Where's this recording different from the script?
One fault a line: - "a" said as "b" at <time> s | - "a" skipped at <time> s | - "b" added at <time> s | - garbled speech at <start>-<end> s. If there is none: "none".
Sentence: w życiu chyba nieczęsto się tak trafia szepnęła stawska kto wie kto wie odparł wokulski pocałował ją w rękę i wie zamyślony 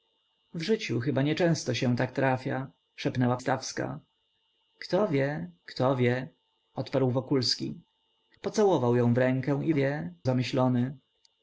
none